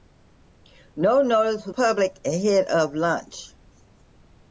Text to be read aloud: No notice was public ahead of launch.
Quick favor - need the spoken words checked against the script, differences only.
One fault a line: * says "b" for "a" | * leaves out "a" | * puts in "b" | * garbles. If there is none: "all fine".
all fine